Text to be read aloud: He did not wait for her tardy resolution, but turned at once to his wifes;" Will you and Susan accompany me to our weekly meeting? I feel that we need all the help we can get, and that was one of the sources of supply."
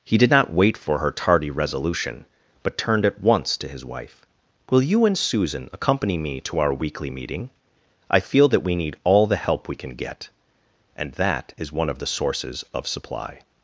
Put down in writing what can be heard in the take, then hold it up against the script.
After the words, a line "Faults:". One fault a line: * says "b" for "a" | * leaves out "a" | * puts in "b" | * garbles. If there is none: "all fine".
He did not wait for her tardy resolution, but turned at once to his wife;" Will you and Susan accompany me to our weekly meeting? I feel that we need all the help we can get, and that is one of the sources of supply."
Faults:
* says "wife" for "wifes"
* says "is" for "was"